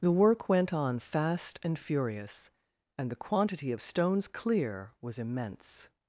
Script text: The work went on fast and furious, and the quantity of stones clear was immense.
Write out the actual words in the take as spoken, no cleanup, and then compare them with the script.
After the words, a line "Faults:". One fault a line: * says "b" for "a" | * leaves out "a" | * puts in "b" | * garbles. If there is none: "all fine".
The work went on fast and furious, and the quantity of stones clear was immense.
Faults:
all fine